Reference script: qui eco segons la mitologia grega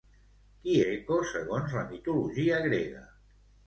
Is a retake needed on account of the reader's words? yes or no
no